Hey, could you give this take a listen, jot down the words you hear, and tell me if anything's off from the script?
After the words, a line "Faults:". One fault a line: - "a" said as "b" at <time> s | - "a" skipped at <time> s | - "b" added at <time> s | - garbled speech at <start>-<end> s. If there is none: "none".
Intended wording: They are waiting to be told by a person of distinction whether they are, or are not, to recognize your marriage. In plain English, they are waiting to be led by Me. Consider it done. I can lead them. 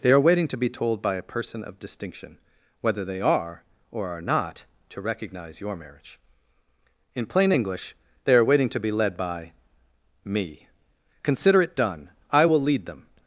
They are waiting to be told by a person of distinction whether they are, or are not, to recognize your marriage. In plain English, they are waiting to be led by Me. Consider it done. I will lead them.
Faults:
- "can" said as "will" at 12.4 s